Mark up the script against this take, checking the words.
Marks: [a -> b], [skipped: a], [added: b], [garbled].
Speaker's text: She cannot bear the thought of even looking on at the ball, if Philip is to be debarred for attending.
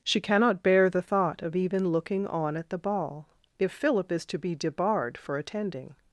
She cannot bear the thought of even looking on at the ball, if Philip is to be debarred for attending.